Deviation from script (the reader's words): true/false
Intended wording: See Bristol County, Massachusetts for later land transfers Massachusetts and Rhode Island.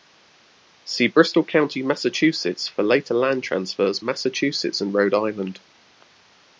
false